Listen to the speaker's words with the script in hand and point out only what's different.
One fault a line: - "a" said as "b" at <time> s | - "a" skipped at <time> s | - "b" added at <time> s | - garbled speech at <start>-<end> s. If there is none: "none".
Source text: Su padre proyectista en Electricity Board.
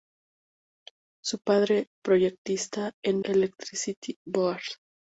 none